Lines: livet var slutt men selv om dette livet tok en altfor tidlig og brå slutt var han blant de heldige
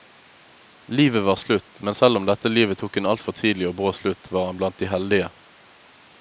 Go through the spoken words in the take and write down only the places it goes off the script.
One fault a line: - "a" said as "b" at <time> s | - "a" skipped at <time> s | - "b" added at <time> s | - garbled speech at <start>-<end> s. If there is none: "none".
none